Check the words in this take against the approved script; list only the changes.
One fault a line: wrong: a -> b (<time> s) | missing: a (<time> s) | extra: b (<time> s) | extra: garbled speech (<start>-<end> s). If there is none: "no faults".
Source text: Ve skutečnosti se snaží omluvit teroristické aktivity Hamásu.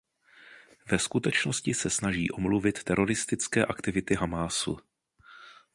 no faults